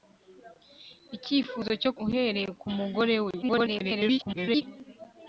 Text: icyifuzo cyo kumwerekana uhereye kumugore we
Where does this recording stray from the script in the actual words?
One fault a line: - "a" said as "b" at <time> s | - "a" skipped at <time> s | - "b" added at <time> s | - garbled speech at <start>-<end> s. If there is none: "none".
- "kumwerekana" skipped at 1.9 s
- garbled speech at 3.4-4.6 s